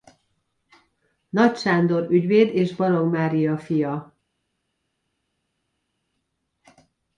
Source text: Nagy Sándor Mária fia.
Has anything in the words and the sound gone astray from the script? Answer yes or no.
yes